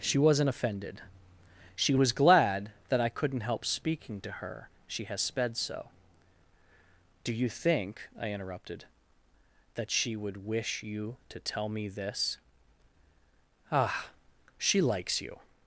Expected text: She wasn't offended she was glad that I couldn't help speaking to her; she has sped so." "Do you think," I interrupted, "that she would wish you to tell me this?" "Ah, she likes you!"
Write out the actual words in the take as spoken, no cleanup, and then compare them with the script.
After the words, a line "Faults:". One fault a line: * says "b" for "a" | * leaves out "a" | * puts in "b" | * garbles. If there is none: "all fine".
She wasn't offended she was glad that I couldn't help speaking to her; she has sped so." "Do you think," I interrupted, "that she would wish you to tell me this?" "Ah, she likes you!"
Faults:
all fine